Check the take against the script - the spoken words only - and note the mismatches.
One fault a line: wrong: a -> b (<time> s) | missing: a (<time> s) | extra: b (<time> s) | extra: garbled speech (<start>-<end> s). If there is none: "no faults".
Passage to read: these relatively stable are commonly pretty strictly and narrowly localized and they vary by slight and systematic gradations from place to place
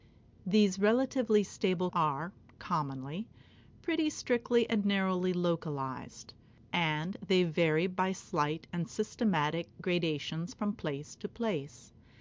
no faults